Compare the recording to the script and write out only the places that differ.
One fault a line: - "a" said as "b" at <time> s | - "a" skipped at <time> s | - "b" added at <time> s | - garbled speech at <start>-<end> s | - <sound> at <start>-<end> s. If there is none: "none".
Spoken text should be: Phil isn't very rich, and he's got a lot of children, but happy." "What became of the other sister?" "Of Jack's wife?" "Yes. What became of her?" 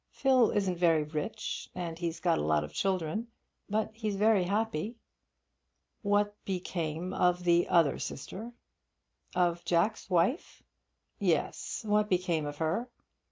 - "he's very" added at 3.9 s